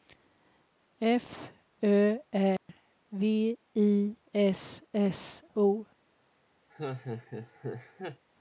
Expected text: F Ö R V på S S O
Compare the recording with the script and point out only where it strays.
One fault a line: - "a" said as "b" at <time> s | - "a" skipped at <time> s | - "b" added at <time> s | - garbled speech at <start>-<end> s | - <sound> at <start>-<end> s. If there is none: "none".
- dropout at 2.6-2.7 s
- "på" said as "I" at 3.8 s
- laugh at 6.7-8.2 s